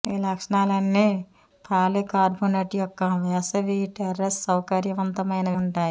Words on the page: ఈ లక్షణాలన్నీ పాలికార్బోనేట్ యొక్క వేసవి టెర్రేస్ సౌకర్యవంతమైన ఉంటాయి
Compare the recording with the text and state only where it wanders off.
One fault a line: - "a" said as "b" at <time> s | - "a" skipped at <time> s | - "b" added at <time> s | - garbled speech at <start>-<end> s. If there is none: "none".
none